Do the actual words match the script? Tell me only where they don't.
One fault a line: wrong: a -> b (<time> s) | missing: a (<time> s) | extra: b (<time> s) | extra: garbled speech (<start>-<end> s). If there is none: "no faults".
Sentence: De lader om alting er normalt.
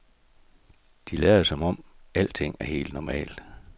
extra: som (1.4 s)
extra: helt (2.6 s)